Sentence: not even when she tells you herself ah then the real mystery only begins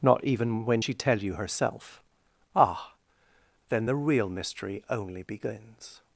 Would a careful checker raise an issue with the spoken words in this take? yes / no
yes